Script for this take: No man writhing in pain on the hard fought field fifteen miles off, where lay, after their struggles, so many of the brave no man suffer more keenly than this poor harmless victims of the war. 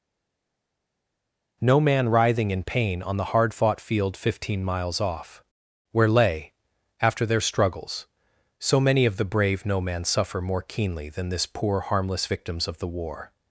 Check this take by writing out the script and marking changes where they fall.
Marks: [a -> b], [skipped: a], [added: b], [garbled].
No man writhing in pain on the hard fought field fifteen miles off, where lay, after their struggles, so many of the brave no man suffer more keenly than this poor harmless victims of the war.